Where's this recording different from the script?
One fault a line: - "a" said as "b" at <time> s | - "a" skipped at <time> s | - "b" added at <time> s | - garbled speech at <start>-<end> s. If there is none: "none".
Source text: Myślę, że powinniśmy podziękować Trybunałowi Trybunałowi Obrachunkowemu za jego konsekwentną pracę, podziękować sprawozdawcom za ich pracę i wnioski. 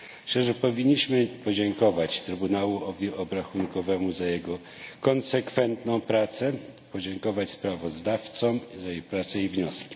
- "Trybunałowi" skipped at 3.1 s